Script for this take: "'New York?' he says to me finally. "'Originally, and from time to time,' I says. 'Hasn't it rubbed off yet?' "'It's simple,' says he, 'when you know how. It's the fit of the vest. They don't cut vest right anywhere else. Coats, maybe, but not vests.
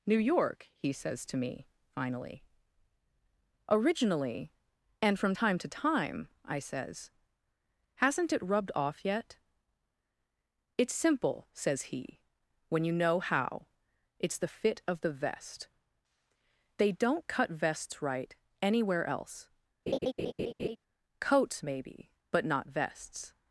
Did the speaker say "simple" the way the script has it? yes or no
yes